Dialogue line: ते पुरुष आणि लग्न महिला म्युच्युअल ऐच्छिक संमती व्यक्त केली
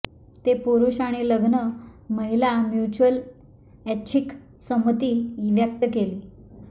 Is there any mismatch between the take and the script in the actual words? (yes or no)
no